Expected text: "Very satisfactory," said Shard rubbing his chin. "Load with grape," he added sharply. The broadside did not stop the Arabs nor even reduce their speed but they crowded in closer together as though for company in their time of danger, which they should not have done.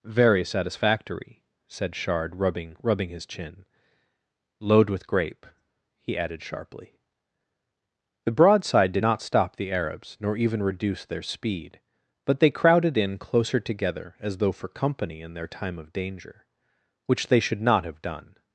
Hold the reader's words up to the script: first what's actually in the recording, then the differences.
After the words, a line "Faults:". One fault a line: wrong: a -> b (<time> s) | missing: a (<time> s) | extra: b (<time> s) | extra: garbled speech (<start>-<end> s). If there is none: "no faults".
"Very satisfactory," said Shard rubbing rubbing his chin. "Load with grape," he added sharply. The broadside did not stop the Arabs nor even reduce their speed but they crowded in closer together as though for company in their time of danger, which they should not have done.
Faults:
extra: rubbing (2.8 s)